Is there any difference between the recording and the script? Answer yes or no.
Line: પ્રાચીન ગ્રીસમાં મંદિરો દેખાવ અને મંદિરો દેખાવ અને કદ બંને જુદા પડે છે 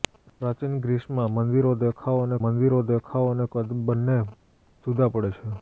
no